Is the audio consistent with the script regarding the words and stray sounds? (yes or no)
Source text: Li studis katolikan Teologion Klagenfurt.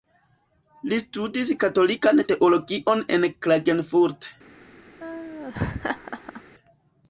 no